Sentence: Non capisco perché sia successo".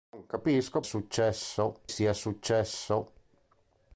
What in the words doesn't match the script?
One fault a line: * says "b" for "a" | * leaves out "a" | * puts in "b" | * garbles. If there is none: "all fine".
* says "successo" for "perché"